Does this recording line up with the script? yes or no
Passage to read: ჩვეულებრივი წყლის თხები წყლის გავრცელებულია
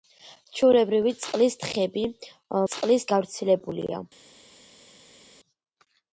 yes